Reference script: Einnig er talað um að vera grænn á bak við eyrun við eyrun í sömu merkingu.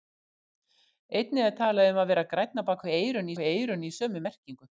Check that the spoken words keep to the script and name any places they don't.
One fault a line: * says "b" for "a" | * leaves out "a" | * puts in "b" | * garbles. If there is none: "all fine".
all fine